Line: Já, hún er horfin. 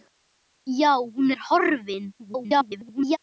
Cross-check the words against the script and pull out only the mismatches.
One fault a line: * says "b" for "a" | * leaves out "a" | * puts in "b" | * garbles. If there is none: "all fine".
* garbles